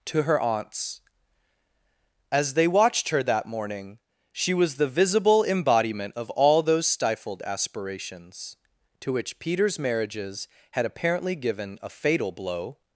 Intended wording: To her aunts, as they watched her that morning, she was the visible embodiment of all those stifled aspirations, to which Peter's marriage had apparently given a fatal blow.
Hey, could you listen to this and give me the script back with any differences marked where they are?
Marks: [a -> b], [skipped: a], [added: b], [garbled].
To her aunts, as they watched her that morning, she was the visible embodiment of all those stifled aspirations, to which Peter's [marriage -> marriages] had apparently given a fatal blow.